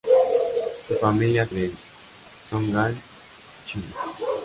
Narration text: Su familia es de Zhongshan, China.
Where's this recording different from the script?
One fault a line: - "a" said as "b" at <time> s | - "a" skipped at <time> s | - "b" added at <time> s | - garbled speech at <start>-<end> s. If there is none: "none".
none